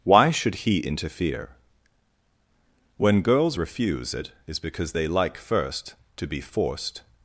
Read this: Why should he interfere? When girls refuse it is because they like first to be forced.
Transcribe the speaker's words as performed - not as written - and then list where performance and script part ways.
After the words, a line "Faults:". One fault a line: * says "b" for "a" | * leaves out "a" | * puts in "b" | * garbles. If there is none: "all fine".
Why should he interfere? When girls refuse it is because they like first to be forced.
Faults:
all fine